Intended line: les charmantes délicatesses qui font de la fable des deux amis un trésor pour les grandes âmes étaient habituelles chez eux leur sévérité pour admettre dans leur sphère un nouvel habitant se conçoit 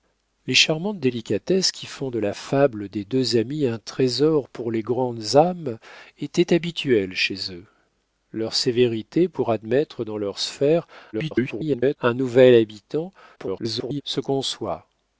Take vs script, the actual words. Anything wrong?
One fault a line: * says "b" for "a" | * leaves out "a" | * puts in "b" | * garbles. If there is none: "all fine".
* garbles
* garbles